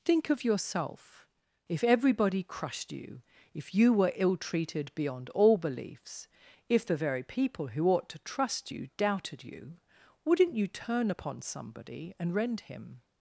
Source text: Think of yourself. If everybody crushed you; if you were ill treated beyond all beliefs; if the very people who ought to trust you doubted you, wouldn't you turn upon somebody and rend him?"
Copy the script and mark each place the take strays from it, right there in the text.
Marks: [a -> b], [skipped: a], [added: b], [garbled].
Think of yourself. If everybody crushed you; if you were ill treated beyond all beliefs; if the very people who ought to trust you doubted you, wouldn't you turn upon somebody and rend him?"